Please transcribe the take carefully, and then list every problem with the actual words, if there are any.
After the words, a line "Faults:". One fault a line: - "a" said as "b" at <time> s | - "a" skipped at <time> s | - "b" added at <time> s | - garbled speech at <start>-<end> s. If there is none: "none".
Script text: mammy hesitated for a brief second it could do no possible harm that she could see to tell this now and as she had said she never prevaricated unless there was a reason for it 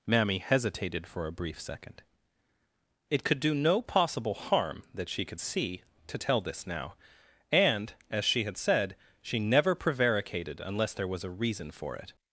mammy hesitated for a brief second it could do no possible harm that she could see to tell this now and as she had said she never prevaricated unless there was a reason for it
Faults:
none